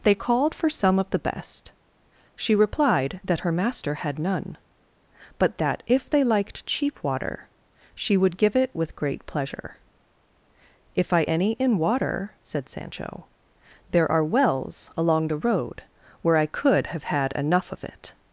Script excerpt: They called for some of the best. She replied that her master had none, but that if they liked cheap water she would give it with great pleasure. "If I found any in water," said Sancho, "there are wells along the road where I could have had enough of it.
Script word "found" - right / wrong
wrong